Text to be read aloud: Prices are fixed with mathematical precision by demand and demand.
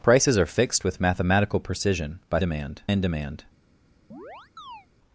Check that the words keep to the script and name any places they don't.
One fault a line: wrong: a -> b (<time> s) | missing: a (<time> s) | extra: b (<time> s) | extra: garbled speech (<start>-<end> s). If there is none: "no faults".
no faults